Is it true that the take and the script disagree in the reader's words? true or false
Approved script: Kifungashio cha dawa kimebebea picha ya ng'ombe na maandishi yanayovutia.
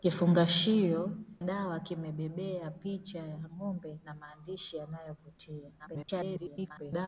true